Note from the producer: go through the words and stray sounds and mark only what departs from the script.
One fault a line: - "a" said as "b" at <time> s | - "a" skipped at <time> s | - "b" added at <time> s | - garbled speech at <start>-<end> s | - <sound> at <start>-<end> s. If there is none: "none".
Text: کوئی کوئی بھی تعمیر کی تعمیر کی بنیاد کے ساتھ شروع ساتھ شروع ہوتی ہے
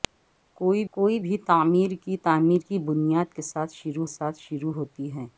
none